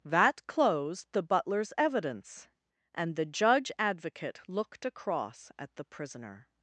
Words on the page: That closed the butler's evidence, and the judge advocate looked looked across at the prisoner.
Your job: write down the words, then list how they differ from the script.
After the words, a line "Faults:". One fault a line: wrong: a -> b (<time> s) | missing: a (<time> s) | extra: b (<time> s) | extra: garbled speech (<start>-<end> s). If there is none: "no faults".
That closed the butler's evidence, and the judge advocate looked across at the prisoner.
Faults:
missing: looked (4.8 s)